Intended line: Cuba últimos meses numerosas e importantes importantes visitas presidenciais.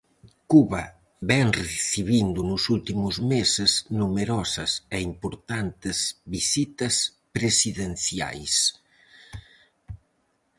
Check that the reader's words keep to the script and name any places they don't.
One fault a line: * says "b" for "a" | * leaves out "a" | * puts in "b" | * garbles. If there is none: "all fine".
* puts in "vén recibindo nos"
* leaves out "importantes"